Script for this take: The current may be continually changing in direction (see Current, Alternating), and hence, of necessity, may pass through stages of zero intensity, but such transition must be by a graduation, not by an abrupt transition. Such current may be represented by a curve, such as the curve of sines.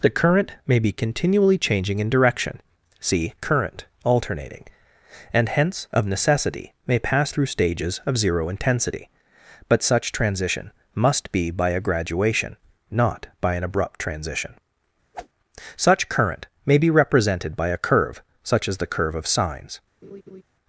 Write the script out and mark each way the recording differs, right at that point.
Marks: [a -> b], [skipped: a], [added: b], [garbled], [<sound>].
The current may be continually changing in direction (see Current, Alternating), and hence, of necessity, may pass through stages of zero intensity, but such transition must be by a graduation, not by an abrupt transition. [whoosh] Such current may be represented by a curve, such as the curve of sines. [laugh]